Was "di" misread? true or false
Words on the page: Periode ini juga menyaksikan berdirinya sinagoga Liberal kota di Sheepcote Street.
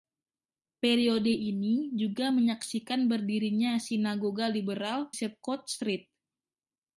true